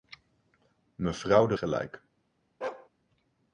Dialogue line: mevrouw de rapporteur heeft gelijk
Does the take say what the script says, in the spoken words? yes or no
no